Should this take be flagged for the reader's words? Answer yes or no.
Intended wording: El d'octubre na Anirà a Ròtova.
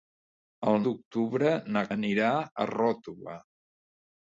no